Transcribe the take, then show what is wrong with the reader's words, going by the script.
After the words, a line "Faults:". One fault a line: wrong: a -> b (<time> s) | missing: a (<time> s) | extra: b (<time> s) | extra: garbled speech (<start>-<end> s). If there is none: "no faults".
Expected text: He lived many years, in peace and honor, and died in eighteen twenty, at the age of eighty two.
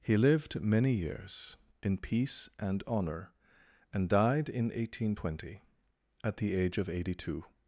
He lived many years, in peace and honor, and died in eighteen twenty, at the age of eighty two.
Faults:
no faults